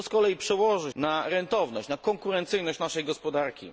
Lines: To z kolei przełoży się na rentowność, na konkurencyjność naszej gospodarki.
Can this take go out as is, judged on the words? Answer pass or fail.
fail